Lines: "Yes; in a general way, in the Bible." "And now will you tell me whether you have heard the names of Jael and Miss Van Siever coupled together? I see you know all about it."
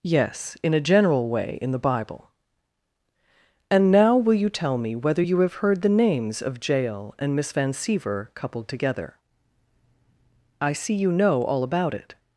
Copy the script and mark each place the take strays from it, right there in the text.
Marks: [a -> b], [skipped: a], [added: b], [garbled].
"Yes; in a general way, in the Bible." "And now will you tell me whether you have heard the names of Jael and Miss Van Siever coupled together? I see you know all about it."